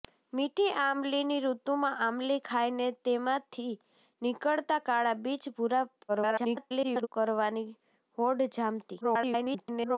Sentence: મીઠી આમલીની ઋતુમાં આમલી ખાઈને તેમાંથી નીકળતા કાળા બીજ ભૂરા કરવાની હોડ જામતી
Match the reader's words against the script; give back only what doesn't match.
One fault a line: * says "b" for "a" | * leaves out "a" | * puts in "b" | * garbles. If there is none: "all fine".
* garbles
* garbles